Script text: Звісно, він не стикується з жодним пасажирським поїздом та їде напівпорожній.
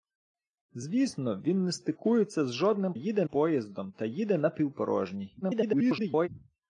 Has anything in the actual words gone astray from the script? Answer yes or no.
yes